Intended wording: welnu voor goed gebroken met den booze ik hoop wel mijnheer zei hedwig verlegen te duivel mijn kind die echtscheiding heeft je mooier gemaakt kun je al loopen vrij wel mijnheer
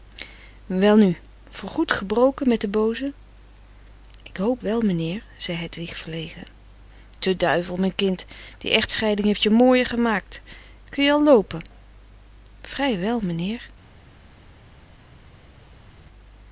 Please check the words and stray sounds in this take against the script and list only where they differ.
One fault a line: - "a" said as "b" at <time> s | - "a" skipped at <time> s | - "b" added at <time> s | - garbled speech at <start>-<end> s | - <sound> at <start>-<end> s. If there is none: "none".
none